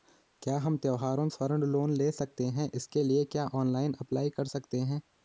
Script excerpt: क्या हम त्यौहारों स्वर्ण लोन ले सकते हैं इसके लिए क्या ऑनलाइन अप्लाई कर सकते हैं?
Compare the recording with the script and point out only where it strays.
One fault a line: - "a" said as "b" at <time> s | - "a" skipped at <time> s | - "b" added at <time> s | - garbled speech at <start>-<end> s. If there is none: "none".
none